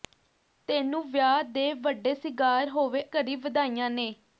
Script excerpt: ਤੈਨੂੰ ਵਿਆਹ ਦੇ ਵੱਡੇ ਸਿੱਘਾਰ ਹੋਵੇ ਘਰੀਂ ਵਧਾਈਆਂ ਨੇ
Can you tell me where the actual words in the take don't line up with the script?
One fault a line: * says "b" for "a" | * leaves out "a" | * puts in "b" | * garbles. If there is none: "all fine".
all fine